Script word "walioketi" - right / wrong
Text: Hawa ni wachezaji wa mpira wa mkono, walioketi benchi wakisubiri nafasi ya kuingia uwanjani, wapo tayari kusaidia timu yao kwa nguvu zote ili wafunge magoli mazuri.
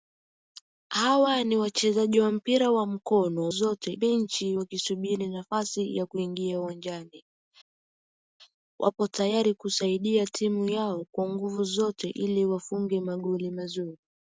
wrong